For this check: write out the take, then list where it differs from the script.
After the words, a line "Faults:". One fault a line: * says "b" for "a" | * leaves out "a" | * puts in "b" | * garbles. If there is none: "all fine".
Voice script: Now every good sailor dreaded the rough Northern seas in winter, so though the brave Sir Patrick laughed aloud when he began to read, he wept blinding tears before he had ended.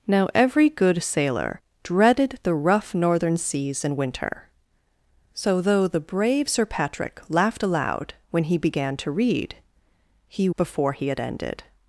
Now every good sailor dreaded the rough Northern seas in winter, so though the brave Sir Patrick laughed aloud when he began to read, he before he had ended.
Faults:
* leaves out "wept blinding tears"